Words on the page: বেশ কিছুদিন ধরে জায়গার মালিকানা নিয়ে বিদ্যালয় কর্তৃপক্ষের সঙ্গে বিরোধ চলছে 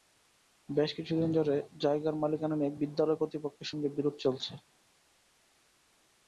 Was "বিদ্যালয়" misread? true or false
false